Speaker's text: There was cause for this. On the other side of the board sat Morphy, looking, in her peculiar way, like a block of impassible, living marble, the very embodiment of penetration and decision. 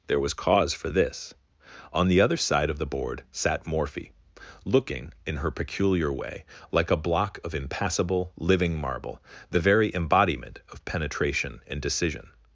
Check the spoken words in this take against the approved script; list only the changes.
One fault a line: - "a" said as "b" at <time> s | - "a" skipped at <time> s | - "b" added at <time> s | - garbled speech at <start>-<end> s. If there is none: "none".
none